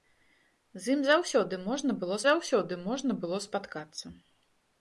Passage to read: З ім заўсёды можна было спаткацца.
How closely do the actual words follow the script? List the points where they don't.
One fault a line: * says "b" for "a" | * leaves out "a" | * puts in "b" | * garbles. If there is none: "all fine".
* puts in "заўсёды можна было"